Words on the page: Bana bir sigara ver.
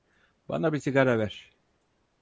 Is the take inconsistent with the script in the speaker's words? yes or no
no